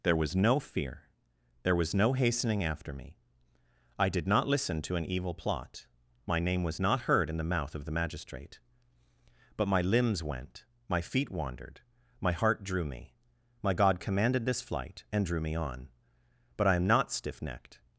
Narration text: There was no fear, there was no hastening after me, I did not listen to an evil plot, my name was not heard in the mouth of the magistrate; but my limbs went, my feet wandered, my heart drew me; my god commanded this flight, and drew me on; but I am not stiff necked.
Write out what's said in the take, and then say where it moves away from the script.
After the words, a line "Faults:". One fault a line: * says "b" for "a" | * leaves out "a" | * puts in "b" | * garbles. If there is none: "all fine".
There was no fear, there was no hastening after me, I did not listen to an evil plot, my name was not heard in the mouth of the magistrate; but my limbs went, my feet wandered, my heart drew me; my god commanded this flight, and drew me on; but I am not stiff necked.
Faults:
all fine